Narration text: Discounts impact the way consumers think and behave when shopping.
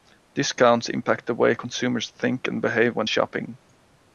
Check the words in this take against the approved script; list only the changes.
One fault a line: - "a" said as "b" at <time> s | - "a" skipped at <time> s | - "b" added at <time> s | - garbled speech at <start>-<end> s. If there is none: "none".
none